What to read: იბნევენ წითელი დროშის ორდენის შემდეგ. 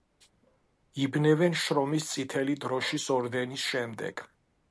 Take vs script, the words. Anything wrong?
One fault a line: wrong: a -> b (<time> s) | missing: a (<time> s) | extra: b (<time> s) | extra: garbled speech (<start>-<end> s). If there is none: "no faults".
extra: შრომის (1.6 s)